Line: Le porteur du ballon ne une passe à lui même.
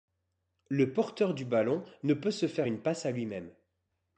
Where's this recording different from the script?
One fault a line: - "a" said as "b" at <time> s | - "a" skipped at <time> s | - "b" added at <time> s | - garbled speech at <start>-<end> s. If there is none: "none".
- "peut se faire" added at 2.1 s